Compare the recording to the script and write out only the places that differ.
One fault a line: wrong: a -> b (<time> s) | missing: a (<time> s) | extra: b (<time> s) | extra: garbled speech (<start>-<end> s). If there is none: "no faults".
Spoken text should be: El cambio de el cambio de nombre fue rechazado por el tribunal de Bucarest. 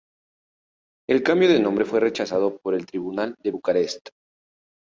missing: el cambio de (1.6 s)